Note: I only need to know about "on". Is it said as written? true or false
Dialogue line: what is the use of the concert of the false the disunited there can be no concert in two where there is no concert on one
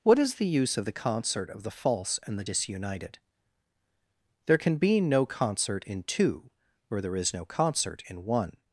false